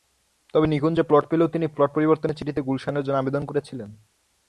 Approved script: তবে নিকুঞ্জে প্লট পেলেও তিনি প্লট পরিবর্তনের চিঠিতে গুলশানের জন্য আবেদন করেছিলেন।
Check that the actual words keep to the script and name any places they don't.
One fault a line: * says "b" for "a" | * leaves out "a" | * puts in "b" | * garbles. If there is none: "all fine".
all fine